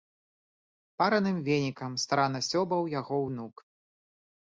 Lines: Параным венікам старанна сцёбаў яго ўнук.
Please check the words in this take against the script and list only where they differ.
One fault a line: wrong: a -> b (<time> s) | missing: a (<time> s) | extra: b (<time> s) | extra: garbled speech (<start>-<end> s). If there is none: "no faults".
no faults